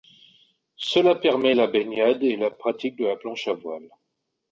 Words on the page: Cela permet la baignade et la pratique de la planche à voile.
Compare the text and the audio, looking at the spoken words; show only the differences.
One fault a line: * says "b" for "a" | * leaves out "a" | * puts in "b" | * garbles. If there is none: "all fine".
all fine